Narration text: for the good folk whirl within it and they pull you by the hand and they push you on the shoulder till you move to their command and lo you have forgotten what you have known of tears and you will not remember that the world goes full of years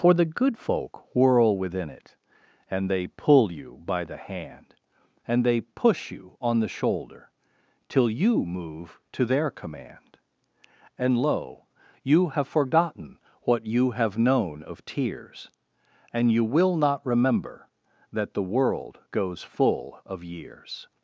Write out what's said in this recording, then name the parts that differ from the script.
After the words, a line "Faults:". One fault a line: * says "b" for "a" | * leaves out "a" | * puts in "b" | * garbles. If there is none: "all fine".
for the good folk whirl within it and they pull you by the hand and they push you on the shoulder till you move to their command and lo you have forgotten what you have known of tears and you will not remember that the world goes full of years
Faults:
all fine